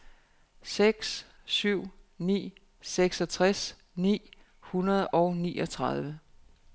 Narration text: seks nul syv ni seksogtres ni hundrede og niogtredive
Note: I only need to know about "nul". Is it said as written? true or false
false